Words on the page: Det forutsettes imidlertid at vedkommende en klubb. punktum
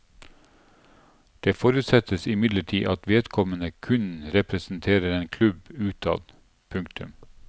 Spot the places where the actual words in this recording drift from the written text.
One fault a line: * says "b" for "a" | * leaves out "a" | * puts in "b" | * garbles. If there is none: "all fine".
* puts in "kun representerer"
* puts in "utad"